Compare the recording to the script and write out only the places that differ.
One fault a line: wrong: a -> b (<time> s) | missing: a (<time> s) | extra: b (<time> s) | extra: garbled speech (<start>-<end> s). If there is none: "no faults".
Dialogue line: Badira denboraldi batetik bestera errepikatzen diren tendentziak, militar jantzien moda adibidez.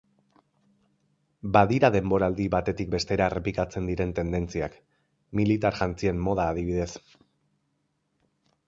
no faults